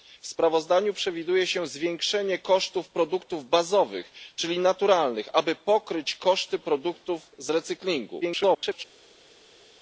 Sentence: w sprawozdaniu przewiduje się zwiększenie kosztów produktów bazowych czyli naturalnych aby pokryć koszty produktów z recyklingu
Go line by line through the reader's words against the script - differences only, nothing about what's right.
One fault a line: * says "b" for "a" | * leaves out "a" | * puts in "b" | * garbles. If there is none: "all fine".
* garbles